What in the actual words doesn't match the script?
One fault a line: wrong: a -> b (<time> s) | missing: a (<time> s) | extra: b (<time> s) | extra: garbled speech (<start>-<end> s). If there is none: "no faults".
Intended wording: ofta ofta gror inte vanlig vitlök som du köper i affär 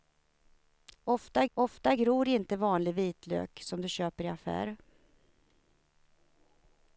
no faults